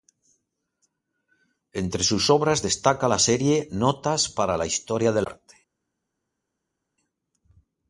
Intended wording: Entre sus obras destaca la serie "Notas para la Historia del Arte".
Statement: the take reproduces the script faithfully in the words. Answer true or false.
true